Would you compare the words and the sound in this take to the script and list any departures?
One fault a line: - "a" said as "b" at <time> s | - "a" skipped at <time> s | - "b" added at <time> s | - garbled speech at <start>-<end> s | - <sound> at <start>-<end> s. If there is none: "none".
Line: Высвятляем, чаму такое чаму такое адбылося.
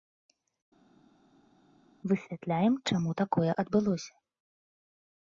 - "чаму такое" skipped at 3.5 s